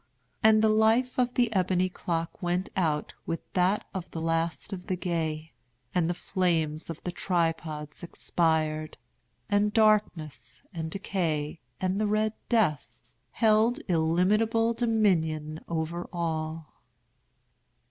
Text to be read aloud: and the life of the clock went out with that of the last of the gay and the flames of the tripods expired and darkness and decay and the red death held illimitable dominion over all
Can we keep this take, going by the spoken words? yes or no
no